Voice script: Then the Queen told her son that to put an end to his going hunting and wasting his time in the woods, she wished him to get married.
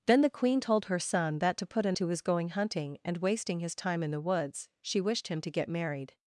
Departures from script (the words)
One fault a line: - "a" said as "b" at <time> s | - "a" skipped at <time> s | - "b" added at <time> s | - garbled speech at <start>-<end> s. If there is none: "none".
- "end" skipped at 2.0 s